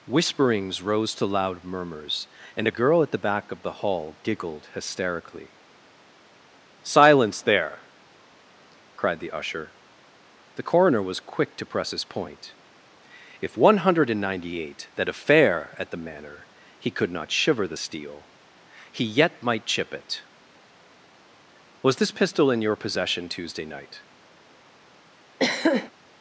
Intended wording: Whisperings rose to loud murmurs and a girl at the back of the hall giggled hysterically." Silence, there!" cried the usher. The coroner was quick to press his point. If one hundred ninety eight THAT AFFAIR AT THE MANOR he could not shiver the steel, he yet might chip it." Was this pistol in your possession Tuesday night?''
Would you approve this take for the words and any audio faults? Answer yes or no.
no